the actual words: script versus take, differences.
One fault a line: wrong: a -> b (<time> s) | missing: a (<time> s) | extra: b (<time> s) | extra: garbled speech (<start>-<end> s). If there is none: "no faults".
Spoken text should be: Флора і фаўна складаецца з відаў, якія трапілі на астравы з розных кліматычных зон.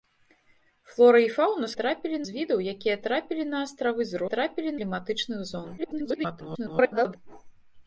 wrong: складаецца -> трапілі (1.8 s)
wrong: розных -> трапілі (4.3 s)
extra: garbled speech (5.8-7.2 s)